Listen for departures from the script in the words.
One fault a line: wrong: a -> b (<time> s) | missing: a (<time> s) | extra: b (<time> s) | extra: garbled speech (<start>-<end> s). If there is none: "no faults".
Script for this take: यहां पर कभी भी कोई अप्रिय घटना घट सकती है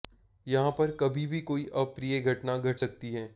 no faults